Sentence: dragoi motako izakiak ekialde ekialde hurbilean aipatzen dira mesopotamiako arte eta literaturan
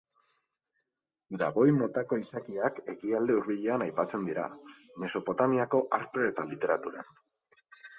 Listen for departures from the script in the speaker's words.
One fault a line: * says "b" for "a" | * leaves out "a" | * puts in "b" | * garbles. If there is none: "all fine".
* leaves out "ekialde"